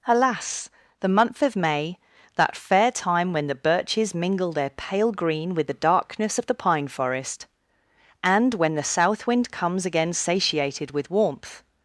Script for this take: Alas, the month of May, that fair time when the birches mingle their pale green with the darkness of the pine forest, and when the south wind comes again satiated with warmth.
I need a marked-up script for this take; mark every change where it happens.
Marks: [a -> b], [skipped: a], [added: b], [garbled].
Alas, the month of May, that fair time when the birches mingle their pale green with the darkness of the pine forest, and when the south wind comes again satiated with warmth.